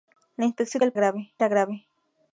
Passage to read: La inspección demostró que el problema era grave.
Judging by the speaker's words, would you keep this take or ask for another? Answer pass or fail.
fail